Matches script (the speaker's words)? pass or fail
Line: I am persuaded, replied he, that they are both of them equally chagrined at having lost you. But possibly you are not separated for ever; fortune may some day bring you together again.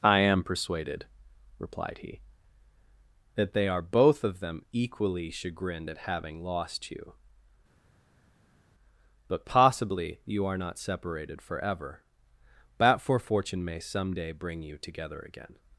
fail